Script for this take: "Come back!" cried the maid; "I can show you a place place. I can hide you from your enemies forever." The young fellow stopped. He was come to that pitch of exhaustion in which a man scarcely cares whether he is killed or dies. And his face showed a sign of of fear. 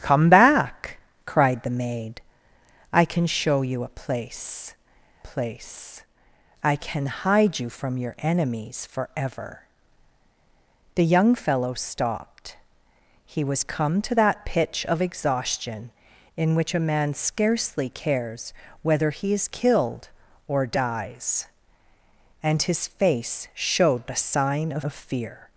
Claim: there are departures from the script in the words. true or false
false